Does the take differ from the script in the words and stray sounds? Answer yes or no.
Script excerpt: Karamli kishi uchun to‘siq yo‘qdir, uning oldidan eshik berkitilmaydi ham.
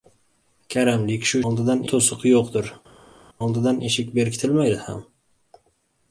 yes